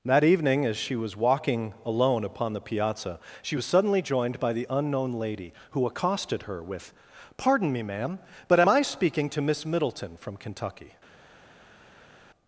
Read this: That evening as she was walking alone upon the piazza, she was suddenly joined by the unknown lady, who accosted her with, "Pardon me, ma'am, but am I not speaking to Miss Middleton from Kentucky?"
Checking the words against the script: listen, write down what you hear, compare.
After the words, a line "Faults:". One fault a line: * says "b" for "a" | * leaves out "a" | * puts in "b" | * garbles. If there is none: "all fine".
That evening as she was walking alone upon the piazza, she was suddenly joined by the unknown lady, who accosted her with, "Pardon me, ma'am, but am I speaking to Miss Middleton from Kentucky?"
Faults:
* leaves out "not"